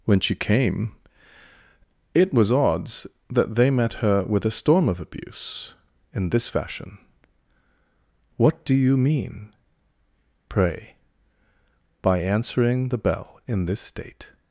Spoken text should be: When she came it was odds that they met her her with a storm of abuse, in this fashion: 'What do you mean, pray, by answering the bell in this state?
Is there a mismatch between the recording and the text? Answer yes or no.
yes